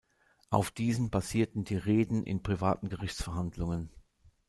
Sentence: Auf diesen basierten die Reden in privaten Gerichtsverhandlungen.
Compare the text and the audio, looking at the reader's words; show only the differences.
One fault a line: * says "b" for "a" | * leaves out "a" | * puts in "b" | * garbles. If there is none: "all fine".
all fine